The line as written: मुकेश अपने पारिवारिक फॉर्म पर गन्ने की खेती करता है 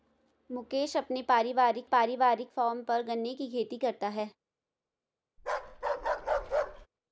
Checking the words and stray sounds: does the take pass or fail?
fail